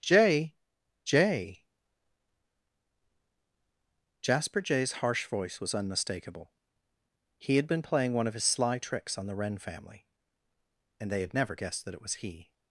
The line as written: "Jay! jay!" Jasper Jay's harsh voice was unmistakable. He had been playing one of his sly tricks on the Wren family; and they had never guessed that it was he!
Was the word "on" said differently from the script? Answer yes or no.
no